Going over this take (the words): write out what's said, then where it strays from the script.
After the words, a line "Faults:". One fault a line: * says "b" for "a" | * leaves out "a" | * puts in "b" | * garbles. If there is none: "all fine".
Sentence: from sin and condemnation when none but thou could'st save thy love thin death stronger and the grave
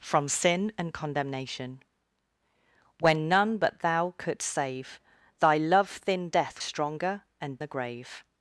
from sin and condemnation when none but thou could'st save thy love thin death stronger and the grave
Faults:
all fine